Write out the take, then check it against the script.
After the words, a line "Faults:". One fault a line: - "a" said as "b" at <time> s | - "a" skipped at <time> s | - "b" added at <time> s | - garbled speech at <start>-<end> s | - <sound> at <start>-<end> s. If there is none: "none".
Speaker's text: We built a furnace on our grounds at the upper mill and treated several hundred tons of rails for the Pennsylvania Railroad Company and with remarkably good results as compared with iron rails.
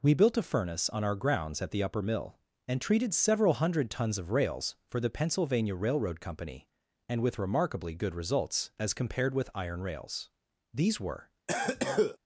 We built a furnace on our grounds at the upper mill and treated several hundred tons of rails for the Pennsylvania Railroad Company and with remarkably good results as compared with iron rails. These were
Faults:
- "These were" added at 10.7 s
- cough at 11.5-12.2 s